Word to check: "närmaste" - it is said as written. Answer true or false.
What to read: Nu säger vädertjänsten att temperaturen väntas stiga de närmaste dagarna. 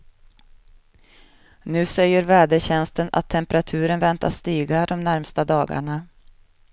true